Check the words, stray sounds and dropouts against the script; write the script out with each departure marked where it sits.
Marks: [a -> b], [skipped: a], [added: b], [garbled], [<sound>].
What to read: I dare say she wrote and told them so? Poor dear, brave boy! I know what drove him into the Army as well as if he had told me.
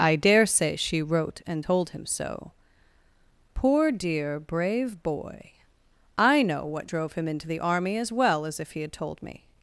I dare say she wrote and told [them -> him] so? Poor dear, brave boy! I know what drove him into the Army as well as if he had told me.